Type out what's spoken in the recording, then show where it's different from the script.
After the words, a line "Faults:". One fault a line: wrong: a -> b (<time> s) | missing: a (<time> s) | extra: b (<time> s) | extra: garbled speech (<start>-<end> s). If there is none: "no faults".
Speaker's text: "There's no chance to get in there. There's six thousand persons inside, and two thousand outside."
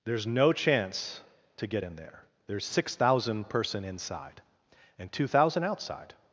"There's no chance to get in there. There's six thousand person inside, and two thousand outside."
Faults:
wrong: persons -> person (3.5 s)